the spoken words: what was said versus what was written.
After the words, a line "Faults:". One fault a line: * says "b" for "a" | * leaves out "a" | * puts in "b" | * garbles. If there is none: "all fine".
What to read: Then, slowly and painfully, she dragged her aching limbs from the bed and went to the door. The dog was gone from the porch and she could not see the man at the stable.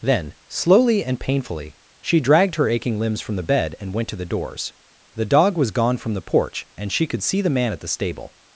Then, slowly and painfully, she dragged her aching limbs from the bed and went to the doors. The dog was gone from the porch and she could see the man at the stable.
Faults:
* says "doors" for "door"
* leaves out "not"